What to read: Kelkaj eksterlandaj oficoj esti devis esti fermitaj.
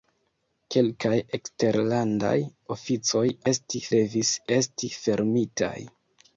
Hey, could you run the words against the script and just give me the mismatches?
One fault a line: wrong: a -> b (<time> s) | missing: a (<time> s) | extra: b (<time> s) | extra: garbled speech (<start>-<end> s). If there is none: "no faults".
no faults